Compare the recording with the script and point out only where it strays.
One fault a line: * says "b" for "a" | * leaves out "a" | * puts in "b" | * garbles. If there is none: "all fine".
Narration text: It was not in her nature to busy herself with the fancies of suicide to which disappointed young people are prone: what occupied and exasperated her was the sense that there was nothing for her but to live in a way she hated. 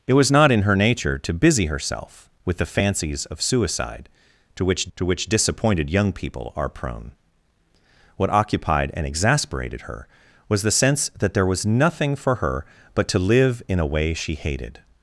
* puts in "to which"